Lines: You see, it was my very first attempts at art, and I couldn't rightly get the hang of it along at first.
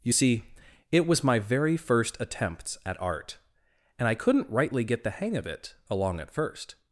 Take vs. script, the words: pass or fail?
pass